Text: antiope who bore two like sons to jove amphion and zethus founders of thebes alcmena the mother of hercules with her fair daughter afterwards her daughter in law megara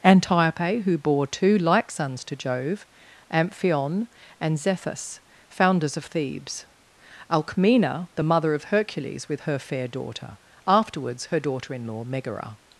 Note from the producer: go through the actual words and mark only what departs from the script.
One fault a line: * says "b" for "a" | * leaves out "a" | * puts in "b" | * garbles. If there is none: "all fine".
all fine